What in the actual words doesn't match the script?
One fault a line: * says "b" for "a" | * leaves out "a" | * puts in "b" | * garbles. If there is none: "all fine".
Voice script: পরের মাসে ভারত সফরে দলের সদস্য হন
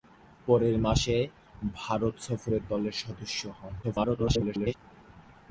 * garbles